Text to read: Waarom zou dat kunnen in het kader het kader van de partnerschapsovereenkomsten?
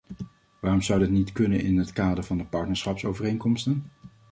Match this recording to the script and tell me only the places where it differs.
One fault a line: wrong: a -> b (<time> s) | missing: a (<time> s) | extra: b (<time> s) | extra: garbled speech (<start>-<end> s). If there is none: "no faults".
extra: niet (1.1 s)
missing: het kader (2.2 s)